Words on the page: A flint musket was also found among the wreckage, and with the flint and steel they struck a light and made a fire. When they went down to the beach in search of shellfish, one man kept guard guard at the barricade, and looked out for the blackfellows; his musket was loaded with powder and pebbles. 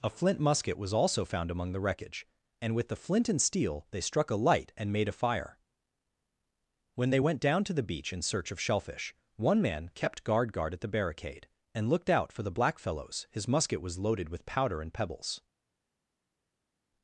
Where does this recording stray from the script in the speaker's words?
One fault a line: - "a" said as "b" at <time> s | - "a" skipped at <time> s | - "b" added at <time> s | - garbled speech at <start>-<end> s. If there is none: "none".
none